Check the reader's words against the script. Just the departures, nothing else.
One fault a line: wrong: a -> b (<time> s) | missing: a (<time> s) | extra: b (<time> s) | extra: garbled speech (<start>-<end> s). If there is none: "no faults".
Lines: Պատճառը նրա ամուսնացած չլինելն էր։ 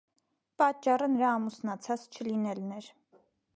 no faults